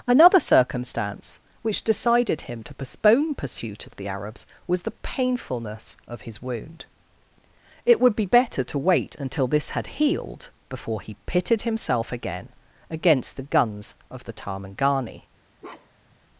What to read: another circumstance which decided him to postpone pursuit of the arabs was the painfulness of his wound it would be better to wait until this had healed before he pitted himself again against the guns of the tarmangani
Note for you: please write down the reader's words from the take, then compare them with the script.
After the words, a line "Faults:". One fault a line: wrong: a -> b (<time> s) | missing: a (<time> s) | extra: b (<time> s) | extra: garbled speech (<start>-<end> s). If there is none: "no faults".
another circumstance which decided him to postpone pursuit of the arabs was the painfulness of his wound it would be better to wait until this had healed before he pitted himself again against the guns of the tarmangani
Faults:
no faults